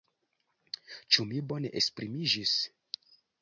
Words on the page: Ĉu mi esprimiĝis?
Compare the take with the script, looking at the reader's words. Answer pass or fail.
fail